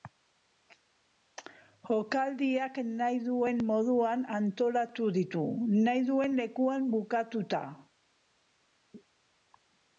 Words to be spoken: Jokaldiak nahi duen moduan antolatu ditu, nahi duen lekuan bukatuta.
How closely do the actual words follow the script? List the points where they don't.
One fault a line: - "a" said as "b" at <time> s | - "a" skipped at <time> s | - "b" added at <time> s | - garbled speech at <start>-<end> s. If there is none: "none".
none